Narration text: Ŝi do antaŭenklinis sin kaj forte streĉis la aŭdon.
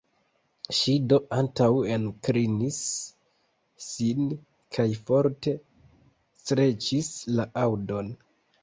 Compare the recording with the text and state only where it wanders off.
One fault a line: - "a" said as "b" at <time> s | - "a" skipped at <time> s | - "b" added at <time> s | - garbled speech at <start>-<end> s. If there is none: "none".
none